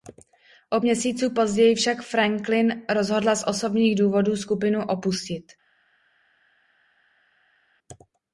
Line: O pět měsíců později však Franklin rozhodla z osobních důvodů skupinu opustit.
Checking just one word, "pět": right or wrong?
wrong